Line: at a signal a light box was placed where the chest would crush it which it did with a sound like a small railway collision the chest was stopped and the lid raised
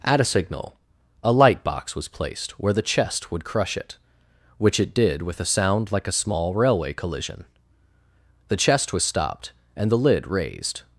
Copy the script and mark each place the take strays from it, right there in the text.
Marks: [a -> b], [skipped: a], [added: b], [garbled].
at a signal a light box was placed where the chest would crush it which it did with a sound like a small railway collision the chest was stopped and the lid raised